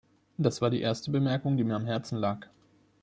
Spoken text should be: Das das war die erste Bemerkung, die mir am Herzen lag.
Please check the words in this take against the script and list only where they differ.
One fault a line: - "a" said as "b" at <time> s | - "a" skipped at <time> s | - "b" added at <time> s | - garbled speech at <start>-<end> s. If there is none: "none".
- "das" skipped at 0.6 s